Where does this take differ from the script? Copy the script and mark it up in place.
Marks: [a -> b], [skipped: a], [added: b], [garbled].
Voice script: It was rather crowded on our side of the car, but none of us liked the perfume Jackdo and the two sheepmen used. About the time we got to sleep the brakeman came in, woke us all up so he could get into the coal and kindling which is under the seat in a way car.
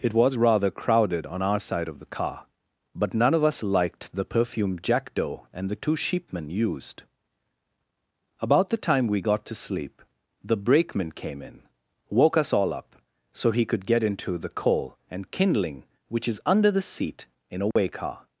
It was rather crowded on our side of the car, but none of us liked the perfume Jackdo and the two sheepmen used. About the time we got to sleep the brakeman came in, woke us all up so he could get into the coal and kindling which is under the seat in a way car.